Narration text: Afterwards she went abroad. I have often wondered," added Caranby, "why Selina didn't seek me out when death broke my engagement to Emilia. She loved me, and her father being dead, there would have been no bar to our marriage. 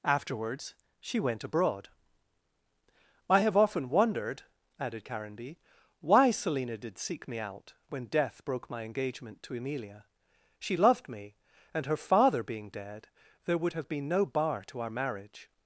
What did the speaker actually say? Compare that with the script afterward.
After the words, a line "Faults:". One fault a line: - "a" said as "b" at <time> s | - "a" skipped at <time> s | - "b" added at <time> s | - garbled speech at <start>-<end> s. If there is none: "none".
Afterwards she went abroad. I have often wondered," added Caranby, "why Selina did seek me out when death broke my engagement to Emilia. She loved me, and her father being dead, there would have been no bar to our marriage.
Faults:
- "didn't" said as "did" at 6.8 s